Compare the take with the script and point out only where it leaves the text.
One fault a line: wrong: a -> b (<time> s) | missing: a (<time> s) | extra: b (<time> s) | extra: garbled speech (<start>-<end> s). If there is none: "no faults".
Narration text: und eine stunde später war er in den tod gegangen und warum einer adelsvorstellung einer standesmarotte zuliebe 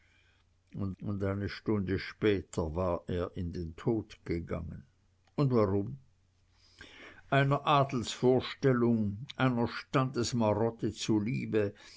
extra: und (1.0 s)